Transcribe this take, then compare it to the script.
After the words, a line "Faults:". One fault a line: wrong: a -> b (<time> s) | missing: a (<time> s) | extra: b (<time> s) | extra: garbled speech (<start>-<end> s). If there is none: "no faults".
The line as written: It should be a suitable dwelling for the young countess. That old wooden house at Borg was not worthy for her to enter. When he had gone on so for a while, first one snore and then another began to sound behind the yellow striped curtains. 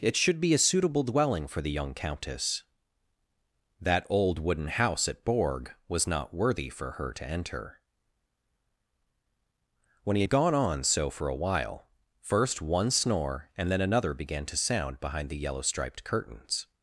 It should be a suitable dwelling for the young countess. That old wooden house at Borg was not worthy for her to enter. When he had gone on so for a while, first one snore and then another began to sound behind the yellow striped curtains.
Faults:
no faults